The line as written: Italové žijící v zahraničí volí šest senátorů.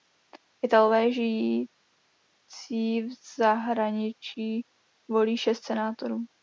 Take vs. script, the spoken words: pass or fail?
pass